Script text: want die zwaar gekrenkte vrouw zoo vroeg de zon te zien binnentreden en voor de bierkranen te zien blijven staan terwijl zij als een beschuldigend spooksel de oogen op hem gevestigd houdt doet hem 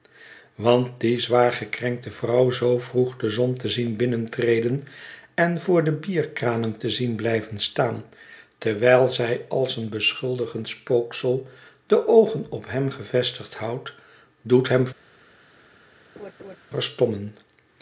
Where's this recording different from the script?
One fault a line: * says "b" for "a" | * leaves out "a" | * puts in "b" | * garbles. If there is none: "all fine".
all fine